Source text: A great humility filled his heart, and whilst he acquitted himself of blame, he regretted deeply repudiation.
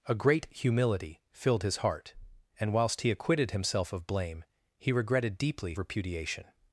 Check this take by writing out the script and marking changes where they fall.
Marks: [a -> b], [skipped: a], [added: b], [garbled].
A great humility filled his heart, and whilst he acquitted himself of blame, he regretted deeply repudiation.